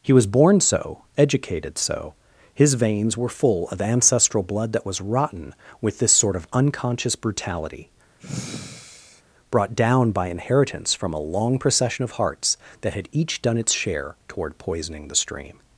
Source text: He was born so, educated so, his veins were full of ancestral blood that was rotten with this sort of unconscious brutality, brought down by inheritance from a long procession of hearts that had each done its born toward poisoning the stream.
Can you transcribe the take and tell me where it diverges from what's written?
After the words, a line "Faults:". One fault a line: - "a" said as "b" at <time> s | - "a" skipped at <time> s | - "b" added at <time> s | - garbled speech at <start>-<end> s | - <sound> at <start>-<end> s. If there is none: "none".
He was born so, educated so, his veins were full of ancestral blood that was rotten with this sort of unconscious brutality, brought down by inheritance from a long procession of hearts that had each done its share toward poisoning the stream.
Faults:
- sigh at 8.2-9.2 s
- "born" said as "share" at 13.7 s